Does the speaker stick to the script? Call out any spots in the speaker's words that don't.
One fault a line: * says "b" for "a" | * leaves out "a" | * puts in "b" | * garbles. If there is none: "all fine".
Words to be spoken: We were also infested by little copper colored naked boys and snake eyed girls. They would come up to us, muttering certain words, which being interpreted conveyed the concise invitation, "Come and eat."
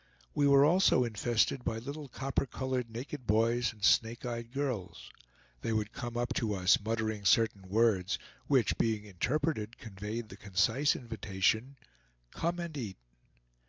all fine